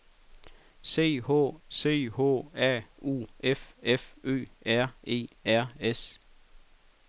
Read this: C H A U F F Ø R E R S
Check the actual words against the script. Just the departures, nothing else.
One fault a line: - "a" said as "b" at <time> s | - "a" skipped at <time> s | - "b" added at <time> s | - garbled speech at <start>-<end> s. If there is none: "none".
- "c H" added at 1.7 s